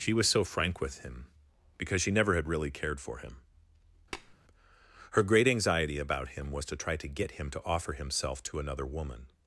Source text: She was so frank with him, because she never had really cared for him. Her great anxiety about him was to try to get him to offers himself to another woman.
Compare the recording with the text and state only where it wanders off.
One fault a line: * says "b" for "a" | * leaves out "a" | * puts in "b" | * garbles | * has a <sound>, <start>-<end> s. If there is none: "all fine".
* has a tap, 4.1-4.3 s
* says "offer" for "offers"